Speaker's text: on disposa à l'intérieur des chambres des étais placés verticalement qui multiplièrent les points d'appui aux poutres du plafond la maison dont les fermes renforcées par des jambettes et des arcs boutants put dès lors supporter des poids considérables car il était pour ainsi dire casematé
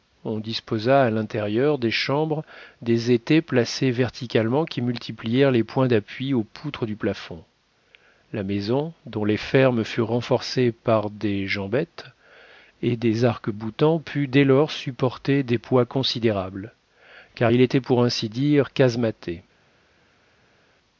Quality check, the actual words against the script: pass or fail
fail